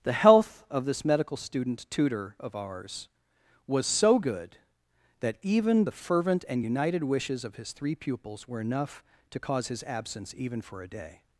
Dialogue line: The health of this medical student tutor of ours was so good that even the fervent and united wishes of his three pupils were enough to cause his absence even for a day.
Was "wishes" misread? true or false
false